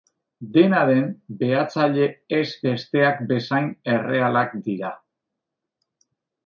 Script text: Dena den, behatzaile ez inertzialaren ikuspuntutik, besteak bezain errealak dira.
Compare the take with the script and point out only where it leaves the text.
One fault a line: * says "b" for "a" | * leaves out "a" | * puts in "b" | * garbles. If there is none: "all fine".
* leaves out "inertzialaren ikuspuntutik"